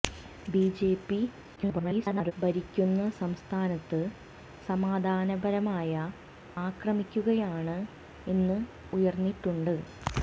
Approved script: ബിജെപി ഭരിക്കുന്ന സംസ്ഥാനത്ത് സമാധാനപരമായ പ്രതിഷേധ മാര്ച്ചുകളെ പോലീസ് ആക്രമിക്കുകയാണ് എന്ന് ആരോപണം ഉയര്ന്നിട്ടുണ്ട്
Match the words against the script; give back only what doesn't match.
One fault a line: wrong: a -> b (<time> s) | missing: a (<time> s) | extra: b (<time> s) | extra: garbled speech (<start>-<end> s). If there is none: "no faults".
extra: garbled speech (1.6-2.3 s)
missing: പ്രതിഷേധ മാര്ച്ചുകളെ പോലീസ് (5.9 s)
missing: ആരോപണം (8.6 s)